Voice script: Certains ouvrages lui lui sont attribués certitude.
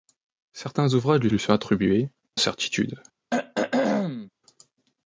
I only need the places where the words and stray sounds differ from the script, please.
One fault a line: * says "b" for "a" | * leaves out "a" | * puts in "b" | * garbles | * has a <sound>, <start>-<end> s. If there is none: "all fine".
* has a throat clearing, 3.3-4.3 s